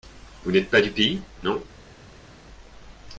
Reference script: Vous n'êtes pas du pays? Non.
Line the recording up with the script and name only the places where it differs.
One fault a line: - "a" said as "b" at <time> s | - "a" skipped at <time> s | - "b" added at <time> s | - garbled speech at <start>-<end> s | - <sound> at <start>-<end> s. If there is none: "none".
none